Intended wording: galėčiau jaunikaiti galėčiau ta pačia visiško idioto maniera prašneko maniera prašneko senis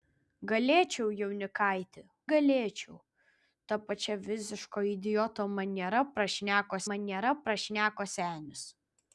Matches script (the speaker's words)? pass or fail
pass